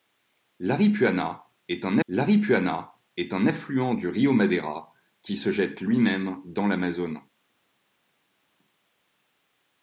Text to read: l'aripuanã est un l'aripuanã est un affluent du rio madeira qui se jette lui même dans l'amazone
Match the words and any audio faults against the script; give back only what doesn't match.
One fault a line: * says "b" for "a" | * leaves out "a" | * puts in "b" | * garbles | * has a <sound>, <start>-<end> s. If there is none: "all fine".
all fine